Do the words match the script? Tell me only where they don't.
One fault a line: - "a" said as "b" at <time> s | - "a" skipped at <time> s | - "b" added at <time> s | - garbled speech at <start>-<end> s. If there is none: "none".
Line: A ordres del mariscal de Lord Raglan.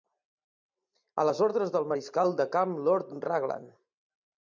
- "les" added at 1.3 s
- "camp" added at 2.6 s